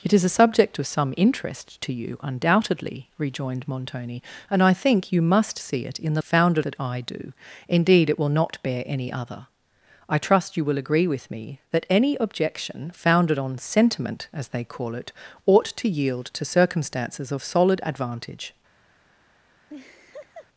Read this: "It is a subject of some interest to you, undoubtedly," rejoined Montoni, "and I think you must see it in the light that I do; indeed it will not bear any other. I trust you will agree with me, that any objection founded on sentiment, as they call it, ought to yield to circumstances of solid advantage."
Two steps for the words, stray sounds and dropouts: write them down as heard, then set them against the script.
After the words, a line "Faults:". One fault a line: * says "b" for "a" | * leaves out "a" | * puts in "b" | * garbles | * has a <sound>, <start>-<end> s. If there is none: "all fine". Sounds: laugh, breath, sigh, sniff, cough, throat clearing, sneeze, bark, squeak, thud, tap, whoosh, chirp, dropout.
"It is a subject of some interest to you, undoubtedly," rejoined Montoni, "and I think you must see it in the founded that I do; indeed it will not bear any other. I trust you will agree with me, that any objection founded on sentiment, as they call it, ought to yield to circumstances of solid advantage."
Faults:
* says "founded" for "light"
* has a laugh, 19.7-20.5 s